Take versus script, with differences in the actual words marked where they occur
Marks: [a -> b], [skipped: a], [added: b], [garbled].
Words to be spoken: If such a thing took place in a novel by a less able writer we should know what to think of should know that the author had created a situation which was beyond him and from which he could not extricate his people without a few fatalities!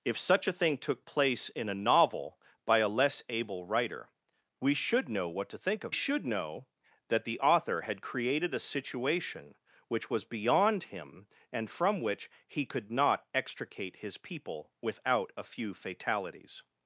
If such a thing took place in a novel by a less able writer we should know what to think of should know that the author had created a situation which was beyond him and from which he could not extricate his people without a few fatalities!